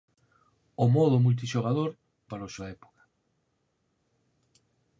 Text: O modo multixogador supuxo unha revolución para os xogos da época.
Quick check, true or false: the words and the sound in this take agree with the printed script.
false